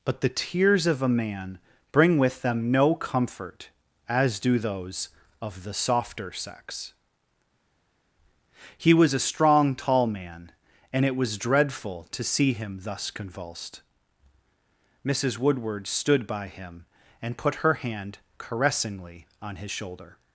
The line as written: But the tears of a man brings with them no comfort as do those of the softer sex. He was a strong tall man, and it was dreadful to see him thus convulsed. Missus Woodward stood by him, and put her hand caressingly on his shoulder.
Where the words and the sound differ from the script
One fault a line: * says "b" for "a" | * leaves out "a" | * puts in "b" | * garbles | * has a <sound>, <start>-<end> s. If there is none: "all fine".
* says "bring" for "brings"